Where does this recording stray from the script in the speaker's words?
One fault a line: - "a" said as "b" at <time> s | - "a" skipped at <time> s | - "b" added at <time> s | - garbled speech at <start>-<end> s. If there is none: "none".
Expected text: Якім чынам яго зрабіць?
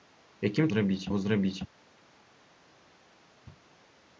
- "чынам" said as "зрабіць" at 0.7 s